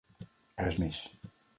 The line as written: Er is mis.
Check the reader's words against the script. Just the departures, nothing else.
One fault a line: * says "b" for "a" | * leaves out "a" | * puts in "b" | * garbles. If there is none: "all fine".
all fine